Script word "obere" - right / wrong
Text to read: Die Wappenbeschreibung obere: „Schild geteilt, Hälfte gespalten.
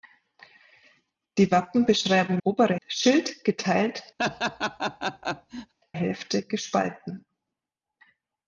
right